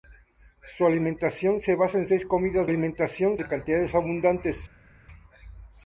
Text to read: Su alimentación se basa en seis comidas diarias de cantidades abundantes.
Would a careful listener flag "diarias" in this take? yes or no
yes